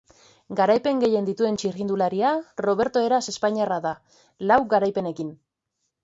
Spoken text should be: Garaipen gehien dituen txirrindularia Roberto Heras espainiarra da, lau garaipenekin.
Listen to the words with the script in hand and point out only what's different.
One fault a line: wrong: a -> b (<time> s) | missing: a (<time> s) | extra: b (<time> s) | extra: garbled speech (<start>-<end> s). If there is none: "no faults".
no faults